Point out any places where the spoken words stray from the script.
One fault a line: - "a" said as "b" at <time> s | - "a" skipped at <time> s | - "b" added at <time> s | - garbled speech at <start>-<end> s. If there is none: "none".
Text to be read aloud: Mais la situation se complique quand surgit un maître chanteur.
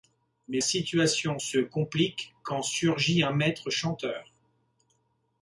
- "la" skipped at 0.6 s